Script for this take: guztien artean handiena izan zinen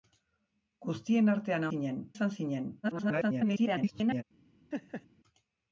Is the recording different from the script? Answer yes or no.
yes